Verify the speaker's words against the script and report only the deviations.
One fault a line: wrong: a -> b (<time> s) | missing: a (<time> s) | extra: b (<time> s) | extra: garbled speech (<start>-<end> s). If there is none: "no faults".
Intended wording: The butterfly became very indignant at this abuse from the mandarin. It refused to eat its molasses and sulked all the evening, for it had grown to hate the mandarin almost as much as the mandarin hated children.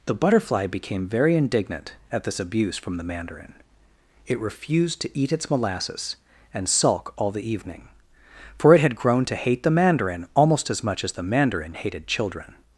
wrong: sulked -> sulk (6.7 s)